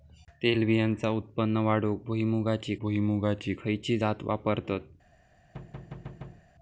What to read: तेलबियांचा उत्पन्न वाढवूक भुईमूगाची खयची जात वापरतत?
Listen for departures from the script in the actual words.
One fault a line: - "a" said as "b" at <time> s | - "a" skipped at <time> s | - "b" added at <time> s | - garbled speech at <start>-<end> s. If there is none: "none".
- "भुईमूगाची" added at 2.8 s